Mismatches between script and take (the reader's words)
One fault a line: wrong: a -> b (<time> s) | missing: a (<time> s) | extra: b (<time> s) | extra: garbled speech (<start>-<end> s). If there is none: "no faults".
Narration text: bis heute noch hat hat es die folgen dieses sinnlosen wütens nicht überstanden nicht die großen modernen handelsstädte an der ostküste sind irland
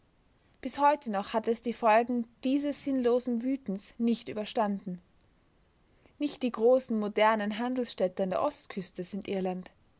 missing: hat (1.5 s)